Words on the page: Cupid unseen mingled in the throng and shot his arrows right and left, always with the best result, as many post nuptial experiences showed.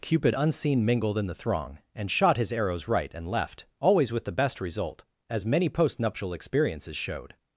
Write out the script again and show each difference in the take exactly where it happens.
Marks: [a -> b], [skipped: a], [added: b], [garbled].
Cupid unseen mingled in the throng and shot his arrows right and left, always with the best result, as many post nuptial experiences showed.